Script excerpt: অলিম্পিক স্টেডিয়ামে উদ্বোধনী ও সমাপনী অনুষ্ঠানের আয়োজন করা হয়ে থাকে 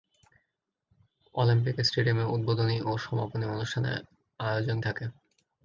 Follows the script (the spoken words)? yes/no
no